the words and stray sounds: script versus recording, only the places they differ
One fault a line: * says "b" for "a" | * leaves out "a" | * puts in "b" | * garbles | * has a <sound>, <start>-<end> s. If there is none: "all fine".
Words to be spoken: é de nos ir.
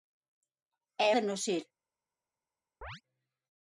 * has a chirp, 2.8-3.0 s